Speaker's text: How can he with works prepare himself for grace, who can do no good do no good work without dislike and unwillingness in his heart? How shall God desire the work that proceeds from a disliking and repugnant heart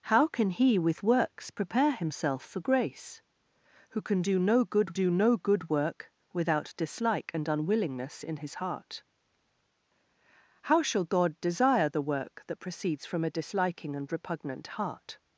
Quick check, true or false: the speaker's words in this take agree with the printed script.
true